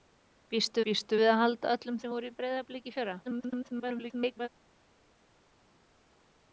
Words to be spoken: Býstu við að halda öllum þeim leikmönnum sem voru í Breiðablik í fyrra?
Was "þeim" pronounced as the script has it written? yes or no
no